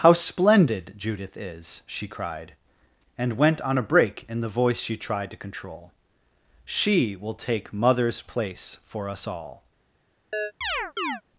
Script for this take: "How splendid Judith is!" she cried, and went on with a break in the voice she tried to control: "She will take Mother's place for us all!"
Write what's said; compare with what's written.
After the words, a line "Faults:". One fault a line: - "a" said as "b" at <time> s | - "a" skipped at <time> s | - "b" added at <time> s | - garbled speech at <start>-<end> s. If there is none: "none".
"How splendid Judith is!" she cried, and went on a break in the voice she tried to control: "She will take Mother's place for us all!"
Faults:
- "with" skipped at 3.8 s